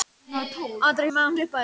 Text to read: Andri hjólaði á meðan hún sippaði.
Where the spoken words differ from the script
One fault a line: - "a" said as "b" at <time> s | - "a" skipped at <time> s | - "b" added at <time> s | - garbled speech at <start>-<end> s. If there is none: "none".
- "hjólaði" skipped at 1.1 s
- "hún" skipped at 1.4 s